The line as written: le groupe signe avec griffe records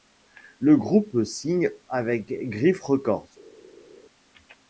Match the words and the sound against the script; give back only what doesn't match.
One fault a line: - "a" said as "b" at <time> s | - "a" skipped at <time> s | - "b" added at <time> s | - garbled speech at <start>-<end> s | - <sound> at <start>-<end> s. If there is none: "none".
none